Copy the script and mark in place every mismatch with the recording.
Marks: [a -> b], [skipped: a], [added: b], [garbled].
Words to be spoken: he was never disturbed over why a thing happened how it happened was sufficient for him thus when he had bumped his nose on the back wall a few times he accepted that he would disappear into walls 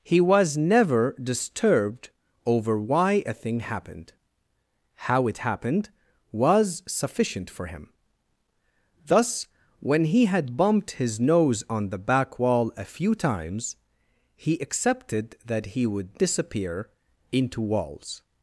he was never disturbed over why a thing happened how it happened was sufficient for him thus when he had bumped his nose on the back wall a few times he accepted that he would disappear into walls